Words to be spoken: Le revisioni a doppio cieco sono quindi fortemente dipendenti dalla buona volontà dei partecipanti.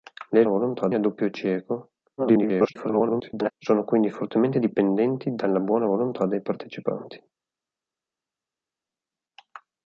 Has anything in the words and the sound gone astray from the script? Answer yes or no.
yes